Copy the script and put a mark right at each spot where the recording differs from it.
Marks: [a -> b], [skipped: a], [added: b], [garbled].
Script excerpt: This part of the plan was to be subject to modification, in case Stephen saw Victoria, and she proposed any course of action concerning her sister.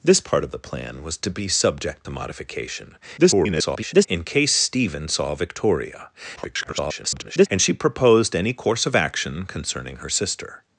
This part of the plan was to be subject to modification, [garbled] in case Stephen saw Victoria, [garbled] and she proposed any course of action concerning her sister.